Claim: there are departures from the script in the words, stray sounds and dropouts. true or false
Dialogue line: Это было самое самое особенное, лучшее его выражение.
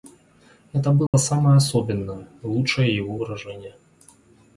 true